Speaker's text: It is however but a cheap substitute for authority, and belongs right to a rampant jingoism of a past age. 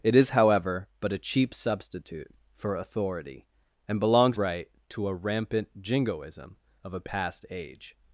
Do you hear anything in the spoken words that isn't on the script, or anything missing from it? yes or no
no